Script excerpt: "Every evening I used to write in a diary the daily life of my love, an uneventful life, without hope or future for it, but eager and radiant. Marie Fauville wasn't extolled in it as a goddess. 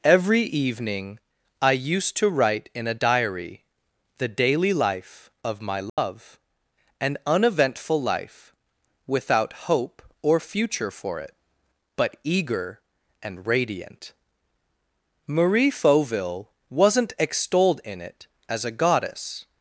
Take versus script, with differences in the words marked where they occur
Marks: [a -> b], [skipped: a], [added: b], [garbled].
"Every evening I used to write in a diary the daily life of my love, an uneventful life, without hope or future for it, but eager and radiant. Marie Fauville wasn't extolled in it as a goddess.